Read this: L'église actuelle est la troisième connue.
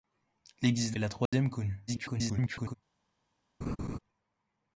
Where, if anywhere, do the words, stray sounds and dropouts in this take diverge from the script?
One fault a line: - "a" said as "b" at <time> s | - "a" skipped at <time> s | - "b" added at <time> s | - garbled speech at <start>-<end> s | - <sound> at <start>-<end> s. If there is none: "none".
- "actuelle" skipped at 1.0 s
- dropout at 1.3-1.3 s
- garbled speech at 1.9-2.7 s
- laugh at 3.6-4.0 s